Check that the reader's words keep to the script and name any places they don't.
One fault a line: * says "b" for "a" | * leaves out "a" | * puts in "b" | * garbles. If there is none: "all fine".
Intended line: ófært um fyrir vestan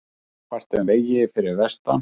* puts in "vegi"